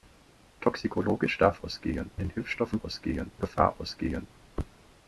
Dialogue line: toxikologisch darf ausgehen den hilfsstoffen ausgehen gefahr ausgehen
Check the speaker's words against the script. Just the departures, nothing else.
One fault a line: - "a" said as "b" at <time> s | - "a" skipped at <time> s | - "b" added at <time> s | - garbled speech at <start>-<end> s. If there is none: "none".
none